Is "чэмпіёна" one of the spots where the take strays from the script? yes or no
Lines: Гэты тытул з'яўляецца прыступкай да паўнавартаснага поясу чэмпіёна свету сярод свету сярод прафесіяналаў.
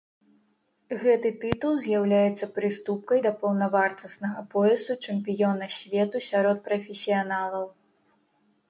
no